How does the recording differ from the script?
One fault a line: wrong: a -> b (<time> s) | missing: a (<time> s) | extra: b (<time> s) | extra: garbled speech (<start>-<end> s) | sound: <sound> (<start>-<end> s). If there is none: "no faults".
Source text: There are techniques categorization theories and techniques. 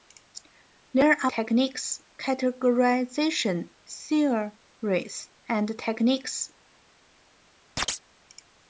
sound: chirp (7.8-8.0 s)